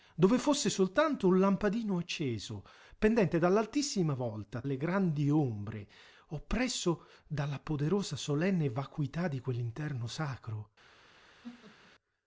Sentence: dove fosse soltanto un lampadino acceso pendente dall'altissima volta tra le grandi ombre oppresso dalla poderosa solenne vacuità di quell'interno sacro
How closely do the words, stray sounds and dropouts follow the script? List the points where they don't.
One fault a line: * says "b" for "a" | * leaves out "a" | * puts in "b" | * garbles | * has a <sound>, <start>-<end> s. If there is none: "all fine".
* leaves out "tra"
* has a laugh, 11.4-11.9 s